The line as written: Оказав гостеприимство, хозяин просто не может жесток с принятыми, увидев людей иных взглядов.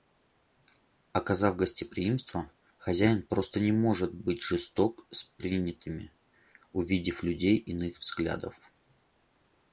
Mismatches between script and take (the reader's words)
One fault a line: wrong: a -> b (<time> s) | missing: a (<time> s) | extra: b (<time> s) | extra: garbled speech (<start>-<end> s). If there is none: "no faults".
extra: быть (4.1 s)